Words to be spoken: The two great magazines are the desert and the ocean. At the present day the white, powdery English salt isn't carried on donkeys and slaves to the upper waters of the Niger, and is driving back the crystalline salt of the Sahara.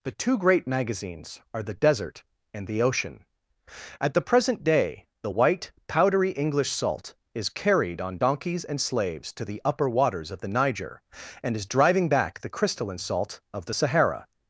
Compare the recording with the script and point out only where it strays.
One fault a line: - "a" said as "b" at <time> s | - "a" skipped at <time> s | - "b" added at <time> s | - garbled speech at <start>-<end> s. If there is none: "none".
- "isn't" said as "is" at 7.4 s